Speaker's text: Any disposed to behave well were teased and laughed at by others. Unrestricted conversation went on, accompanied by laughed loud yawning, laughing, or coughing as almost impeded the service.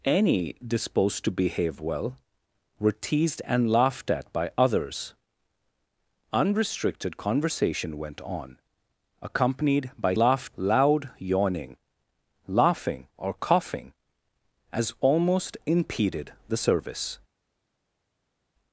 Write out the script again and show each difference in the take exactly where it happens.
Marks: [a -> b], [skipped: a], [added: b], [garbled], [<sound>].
Any disposed to behave well were teased and laughed at by others. Unrestricted conversation went on, accompanied by laughed loud yawning, laughing, or coughing as almost impeded the service.